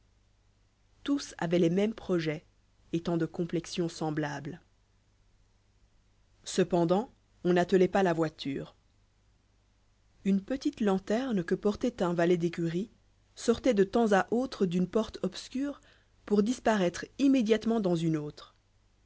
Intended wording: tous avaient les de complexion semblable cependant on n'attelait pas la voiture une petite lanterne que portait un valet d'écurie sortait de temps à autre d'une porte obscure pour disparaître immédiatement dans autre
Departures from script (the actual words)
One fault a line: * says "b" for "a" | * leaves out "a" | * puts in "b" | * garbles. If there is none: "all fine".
* puts in "mêmes projets étant"
* puts in "une"